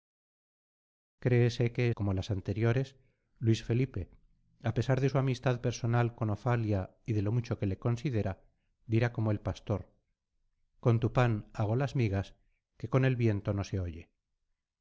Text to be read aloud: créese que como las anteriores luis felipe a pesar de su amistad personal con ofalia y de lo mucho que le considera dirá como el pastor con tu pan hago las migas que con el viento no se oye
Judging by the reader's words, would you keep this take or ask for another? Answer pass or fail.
pass